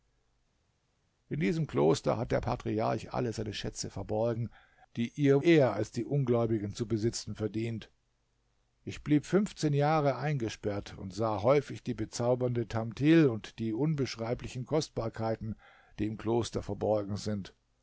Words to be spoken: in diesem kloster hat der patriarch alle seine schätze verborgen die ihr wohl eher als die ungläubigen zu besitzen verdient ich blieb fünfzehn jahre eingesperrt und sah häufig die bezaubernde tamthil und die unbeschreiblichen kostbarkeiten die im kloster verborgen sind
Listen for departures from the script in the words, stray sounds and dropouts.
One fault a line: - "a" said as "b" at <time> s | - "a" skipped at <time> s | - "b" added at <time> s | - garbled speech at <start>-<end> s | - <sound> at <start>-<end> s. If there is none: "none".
- "wohl" skipped at 5.4 s